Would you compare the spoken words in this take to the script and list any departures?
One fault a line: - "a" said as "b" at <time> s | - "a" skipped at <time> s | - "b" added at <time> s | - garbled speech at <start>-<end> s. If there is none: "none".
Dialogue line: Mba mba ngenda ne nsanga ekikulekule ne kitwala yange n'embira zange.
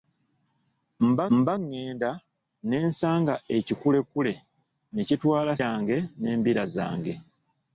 none